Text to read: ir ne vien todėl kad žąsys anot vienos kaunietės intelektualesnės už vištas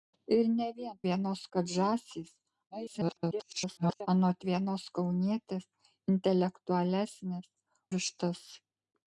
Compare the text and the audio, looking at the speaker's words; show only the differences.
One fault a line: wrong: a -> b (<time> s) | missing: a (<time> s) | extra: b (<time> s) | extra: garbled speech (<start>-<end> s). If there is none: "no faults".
wrong: todėl -> vienos (1.1 s)
extra: garbled speech (2.7-4.1 s)
missing: už (7.5 s)